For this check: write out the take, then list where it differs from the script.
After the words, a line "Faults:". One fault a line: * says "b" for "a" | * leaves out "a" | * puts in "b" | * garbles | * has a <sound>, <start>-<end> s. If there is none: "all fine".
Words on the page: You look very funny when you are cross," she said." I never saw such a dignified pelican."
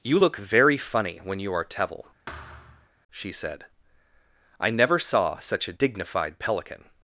You look very funny when you are tevil," she said." I never saw such a dignified pelican."
Faults:
* says "tevil" for "cross"
* has a thud, 2.3-2.9 s